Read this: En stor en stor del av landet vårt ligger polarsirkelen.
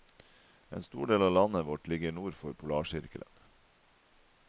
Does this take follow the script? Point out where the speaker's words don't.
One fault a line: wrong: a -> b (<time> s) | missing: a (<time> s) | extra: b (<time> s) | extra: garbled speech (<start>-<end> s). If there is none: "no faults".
missing: en stor (1.1 s)
extra: nord for (2.1 s)